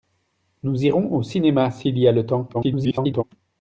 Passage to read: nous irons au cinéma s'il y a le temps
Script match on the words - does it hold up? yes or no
no